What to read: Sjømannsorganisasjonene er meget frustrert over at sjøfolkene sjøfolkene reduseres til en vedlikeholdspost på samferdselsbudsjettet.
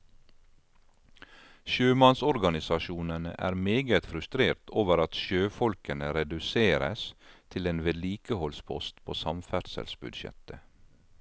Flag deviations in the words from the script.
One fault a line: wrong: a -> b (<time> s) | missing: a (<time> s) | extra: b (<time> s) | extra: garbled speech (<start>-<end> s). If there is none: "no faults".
missing: sjøfolkene (6.1 s)